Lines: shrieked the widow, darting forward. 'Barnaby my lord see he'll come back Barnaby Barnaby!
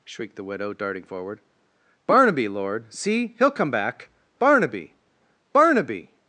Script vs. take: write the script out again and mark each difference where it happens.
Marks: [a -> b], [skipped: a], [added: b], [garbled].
shrieked the widow, darting forward. 'Barnaby [skipped: my] lord see he'll come back Barnaby Barnaby!